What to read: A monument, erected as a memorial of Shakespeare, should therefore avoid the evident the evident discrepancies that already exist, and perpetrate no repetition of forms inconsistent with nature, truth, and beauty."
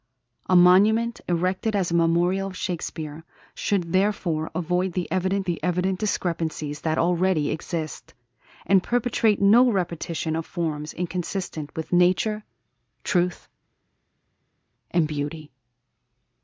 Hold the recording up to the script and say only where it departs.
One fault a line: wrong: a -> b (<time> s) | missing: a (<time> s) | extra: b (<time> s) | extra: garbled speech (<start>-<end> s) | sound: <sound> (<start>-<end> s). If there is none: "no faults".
no faults